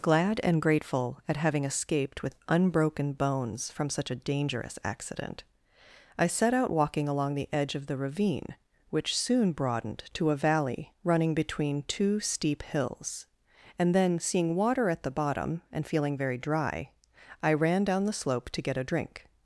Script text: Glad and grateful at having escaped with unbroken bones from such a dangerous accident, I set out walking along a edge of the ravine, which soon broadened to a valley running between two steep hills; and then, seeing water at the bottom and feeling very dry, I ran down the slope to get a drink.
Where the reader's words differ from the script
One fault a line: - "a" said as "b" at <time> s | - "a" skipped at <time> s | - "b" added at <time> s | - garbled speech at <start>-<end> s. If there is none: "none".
- "a" said as "the" at 7.3 s